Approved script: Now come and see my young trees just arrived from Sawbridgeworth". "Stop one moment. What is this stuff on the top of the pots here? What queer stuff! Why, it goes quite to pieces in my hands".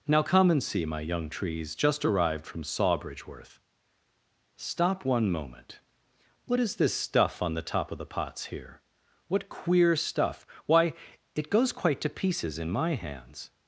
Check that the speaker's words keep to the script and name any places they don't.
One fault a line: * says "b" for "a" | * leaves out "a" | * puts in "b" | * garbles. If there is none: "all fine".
all fine